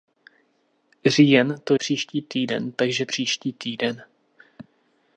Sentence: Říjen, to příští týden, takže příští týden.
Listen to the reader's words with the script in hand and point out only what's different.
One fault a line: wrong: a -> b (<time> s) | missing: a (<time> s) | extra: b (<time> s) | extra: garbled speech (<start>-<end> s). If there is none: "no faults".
no faults